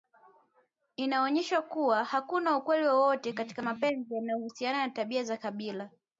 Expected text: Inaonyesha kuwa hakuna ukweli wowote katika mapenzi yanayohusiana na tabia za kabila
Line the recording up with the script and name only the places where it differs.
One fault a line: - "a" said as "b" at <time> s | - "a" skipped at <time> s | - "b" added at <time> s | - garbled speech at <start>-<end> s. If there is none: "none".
none